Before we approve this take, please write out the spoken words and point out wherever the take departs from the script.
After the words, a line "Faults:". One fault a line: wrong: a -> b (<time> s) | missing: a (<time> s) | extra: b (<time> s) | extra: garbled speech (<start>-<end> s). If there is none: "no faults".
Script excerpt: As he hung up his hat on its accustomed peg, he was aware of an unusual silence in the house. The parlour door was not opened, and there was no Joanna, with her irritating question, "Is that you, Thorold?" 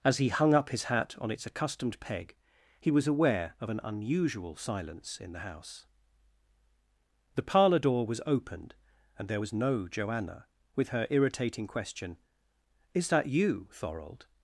As he hung up his hat on its accustomed peg, he was aware of an unusual silence in the house. The parlour door was opened, and there was no Joanna, with her irritating question, "Is that you, Thorold?"
Faults:
missing: not (8.2 s)